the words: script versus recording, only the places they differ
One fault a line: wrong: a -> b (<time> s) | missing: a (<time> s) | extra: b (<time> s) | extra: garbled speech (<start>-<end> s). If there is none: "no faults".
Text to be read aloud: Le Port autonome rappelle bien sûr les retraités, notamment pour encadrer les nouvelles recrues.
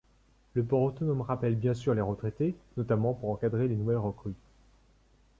no faults